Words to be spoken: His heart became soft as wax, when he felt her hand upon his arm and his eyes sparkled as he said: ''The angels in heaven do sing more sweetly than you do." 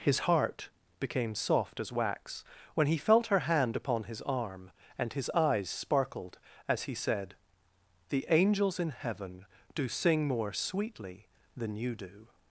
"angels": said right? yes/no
yes